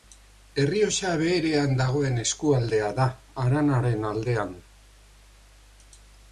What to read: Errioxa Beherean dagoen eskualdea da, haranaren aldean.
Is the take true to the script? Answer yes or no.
yes